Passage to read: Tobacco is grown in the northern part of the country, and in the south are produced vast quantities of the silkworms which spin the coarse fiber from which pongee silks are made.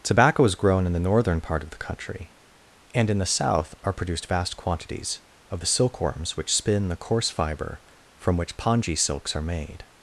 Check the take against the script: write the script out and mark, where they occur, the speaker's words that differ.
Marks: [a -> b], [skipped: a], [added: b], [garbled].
Tobacco is grown in the northern part of the country, and in the south are produced vast quantities of the silkworms which spin the coarse fiber from which pongee silks are made.